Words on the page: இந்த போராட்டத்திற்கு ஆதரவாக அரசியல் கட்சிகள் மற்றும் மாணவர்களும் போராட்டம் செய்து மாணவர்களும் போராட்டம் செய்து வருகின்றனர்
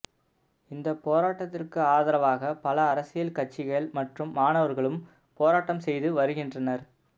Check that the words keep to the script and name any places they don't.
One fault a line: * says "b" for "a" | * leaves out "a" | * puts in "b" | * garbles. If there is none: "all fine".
* puts in "பல"
* leaves out "மாணவர்களும் போராட்டம் செய்து"